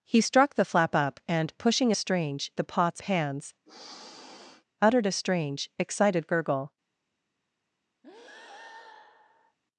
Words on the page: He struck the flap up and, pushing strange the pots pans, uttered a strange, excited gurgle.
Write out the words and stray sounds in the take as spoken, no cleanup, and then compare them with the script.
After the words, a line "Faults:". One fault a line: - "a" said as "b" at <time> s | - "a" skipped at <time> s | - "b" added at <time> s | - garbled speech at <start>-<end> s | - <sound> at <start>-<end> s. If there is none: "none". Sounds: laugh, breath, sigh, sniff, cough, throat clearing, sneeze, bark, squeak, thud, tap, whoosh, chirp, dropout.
He struck the flap up and, pushing strange the pots pans, uttered a strange, excited gurgle.
Faults:
- sniff at 3.7-4.6 s
- breath at 8.0-9.6 s